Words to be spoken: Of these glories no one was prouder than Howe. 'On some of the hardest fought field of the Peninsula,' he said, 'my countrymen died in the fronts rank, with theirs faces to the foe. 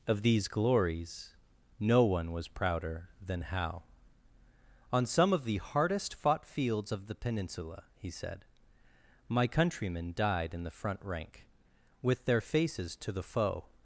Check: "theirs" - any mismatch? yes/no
yes